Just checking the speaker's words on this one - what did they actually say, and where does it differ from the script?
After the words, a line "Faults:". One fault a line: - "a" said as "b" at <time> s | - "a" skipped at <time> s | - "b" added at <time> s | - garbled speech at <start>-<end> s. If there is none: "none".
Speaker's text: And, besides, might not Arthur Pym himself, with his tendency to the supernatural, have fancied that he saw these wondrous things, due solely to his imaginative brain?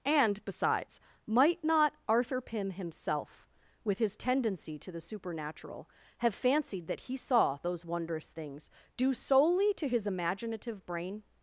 And, besides, might not Arthur Pym himself, with his tendency to the supernatural, have fancied that he saw those wondrous things, due solely to his imaginative brain?
Faults:
- "these" said as "those" at 7.6 s